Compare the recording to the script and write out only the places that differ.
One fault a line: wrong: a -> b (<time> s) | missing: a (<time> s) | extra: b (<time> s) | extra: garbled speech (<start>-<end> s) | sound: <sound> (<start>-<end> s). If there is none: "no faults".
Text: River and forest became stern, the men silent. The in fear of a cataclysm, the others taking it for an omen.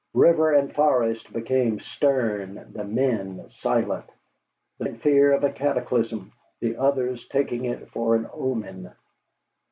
no faults